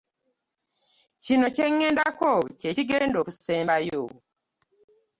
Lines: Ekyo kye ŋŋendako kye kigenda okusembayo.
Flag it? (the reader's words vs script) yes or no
yes